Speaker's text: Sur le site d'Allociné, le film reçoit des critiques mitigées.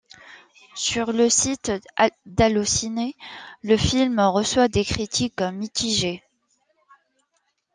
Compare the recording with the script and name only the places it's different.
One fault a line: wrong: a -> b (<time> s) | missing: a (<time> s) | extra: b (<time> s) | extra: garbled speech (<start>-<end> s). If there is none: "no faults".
no faults